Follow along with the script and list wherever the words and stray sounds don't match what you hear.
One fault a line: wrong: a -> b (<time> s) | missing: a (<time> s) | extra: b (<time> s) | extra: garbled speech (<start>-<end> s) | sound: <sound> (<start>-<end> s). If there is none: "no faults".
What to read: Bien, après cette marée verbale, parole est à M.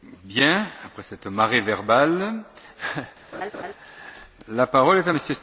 sound: laugh (3.3-3.7 s)
extra: la (4.5 s)